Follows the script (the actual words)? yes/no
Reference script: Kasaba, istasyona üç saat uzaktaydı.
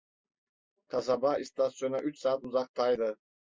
yes